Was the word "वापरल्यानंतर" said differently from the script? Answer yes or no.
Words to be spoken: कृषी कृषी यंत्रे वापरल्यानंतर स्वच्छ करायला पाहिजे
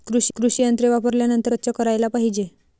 no